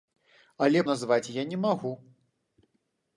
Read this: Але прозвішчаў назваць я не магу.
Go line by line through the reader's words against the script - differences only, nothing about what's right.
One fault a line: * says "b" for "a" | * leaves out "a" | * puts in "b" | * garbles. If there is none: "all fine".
* leaves out "прозвішчаў"